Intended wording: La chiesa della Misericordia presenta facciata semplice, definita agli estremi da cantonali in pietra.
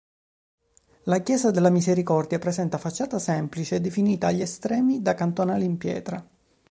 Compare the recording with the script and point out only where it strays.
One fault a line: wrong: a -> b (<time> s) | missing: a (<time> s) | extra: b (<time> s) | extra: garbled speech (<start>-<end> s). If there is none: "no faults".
no faults